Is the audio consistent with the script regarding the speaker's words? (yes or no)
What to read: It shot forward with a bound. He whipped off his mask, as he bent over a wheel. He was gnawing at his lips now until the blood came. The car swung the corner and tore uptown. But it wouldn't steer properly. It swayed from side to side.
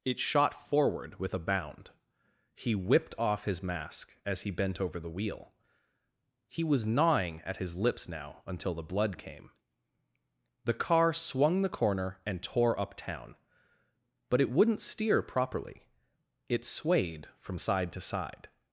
no